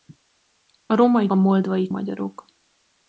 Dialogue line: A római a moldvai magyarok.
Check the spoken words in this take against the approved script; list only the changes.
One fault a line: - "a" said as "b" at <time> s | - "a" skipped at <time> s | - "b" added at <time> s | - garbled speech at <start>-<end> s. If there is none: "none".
none